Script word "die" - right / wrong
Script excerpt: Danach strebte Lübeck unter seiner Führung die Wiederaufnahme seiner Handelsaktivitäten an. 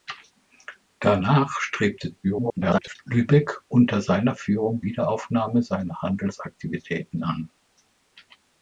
wrong